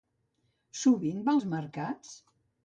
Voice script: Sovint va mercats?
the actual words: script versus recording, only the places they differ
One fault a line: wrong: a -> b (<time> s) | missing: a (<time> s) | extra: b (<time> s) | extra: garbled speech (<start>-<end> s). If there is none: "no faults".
extra: als (1.3 s)